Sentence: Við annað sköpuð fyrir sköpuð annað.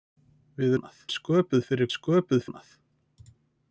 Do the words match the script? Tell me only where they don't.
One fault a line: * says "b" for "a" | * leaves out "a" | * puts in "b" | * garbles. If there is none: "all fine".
all fine